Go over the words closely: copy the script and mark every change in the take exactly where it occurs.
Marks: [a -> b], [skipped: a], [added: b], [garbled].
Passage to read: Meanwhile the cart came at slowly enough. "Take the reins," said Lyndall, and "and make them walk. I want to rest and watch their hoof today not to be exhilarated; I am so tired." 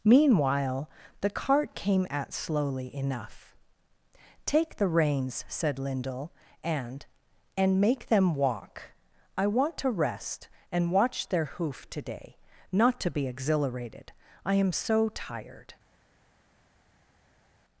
Meanwhile the cart came at slowly enough. "Take the reins," said Lyndall, and "and make them walk. I want to rest and watch their hoof today not to be exhilarated; I am so tired."